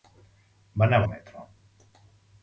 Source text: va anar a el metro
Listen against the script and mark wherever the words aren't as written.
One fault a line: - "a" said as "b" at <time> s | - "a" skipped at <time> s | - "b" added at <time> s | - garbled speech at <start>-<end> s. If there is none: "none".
none